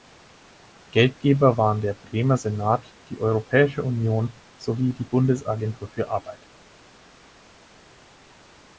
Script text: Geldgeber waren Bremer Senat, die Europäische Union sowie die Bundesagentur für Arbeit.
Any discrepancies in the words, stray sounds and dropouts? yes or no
yes